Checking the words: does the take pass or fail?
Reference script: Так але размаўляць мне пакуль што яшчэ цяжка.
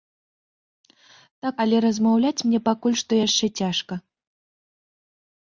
pass